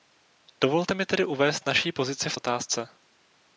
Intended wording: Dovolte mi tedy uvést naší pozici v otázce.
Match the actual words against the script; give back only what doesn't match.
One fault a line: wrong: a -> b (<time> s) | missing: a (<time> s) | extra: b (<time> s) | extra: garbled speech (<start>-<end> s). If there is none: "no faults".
no faults